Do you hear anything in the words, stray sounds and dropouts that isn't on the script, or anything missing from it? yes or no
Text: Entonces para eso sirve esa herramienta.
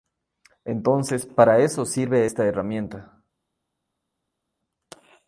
yes